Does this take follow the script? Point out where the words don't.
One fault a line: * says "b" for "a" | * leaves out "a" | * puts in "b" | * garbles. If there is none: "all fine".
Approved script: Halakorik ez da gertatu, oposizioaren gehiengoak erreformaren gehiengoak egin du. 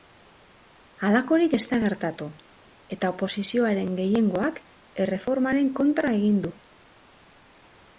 * puts in "eta"
* says "kontra" for "gehiengoak"